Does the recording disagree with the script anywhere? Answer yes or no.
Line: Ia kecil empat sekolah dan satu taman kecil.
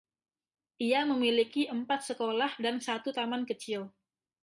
yes